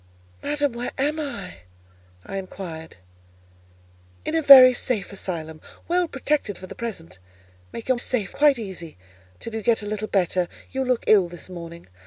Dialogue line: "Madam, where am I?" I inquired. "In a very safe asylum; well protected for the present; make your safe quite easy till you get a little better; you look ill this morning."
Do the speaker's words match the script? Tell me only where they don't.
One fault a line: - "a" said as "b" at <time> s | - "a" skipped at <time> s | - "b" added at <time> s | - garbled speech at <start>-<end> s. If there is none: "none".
none